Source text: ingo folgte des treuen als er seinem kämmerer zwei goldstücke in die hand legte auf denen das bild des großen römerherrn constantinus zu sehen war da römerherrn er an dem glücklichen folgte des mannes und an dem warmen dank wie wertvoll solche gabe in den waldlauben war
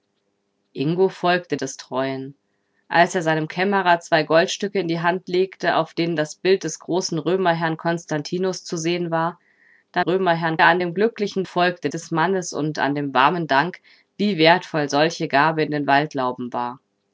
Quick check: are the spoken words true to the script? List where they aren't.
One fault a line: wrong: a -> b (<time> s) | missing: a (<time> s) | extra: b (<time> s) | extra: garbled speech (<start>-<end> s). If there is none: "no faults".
no faults